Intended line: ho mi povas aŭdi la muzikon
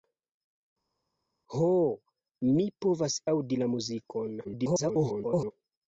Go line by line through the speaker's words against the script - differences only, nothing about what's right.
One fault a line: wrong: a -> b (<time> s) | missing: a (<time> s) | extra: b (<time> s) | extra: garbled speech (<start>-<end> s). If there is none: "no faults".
extra: garbled speech (4.4-5.5 s)